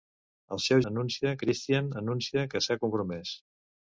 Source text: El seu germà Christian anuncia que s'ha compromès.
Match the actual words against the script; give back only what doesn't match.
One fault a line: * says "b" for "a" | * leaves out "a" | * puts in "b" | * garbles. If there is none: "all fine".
* says "anuncia" for "germà"